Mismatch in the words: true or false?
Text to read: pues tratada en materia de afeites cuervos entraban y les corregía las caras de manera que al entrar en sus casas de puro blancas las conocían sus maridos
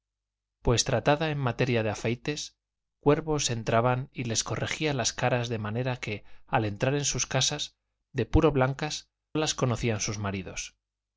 false